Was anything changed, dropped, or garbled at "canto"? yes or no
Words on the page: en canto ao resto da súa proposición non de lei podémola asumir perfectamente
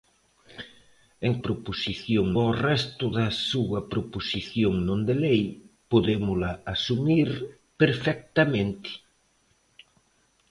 yes